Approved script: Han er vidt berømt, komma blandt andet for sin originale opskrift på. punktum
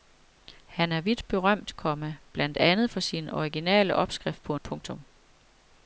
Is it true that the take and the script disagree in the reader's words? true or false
false